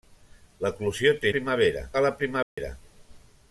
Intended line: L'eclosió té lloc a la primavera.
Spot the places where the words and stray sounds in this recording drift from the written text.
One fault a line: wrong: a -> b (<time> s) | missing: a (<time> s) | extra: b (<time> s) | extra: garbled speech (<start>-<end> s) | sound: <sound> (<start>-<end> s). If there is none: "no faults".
wrong: lloc -> primavera (1.4 s)
sound: dropout (2.4-2.6 s)